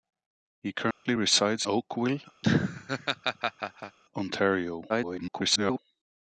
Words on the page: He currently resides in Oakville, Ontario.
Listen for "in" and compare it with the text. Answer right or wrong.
wrong